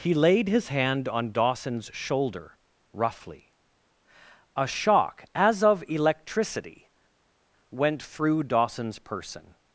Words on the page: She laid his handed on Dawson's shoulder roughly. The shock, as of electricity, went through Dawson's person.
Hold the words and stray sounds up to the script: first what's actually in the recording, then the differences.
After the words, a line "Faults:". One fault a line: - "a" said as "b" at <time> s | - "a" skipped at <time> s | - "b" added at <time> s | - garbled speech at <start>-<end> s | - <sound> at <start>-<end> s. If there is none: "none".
He laid his hand on Dawson's shoulder roughly. A shock, as of electricity, went through Dawson's person.
Faults:
- "She" said as "He" at 0.0 s
- "handed" said as "hand" at 0.7 s
- "The" said as "A" at 4.5 s